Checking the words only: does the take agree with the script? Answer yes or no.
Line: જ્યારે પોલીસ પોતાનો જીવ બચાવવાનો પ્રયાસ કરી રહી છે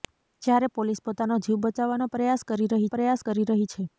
no